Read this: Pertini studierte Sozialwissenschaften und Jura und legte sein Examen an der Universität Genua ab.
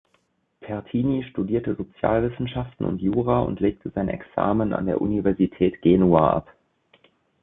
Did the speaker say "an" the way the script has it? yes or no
yes